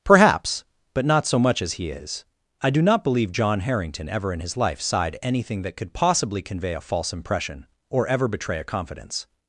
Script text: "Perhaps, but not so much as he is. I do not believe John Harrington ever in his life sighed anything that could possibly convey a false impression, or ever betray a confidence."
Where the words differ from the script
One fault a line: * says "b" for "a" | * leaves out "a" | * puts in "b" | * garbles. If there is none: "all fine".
all fine